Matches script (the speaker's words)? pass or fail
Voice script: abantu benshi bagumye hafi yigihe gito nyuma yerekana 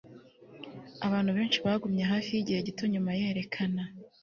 pass